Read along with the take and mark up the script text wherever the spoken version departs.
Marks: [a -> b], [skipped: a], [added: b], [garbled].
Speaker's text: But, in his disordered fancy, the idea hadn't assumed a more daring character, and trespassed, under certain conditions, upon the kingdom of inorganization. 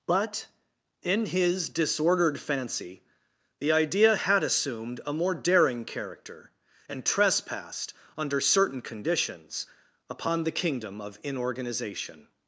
But, in his disordered fancy, the idea [hadn't -> had] assumed a more daring character, and trespassed, under certain conditions, upon the kingdom of inorganization.